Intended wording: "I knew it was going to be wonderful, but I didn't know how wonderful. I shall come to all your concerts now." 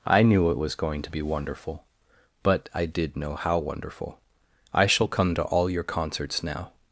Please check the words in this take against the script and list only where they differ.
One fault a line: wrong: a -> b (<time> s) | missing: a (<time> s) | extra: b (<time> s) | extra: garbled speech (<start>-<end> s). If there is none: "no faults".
wrong: didn't -> did (2.9 s)